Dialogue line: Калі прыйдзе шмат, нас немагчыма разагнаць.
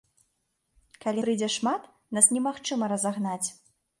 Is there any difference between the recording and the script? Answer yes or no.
no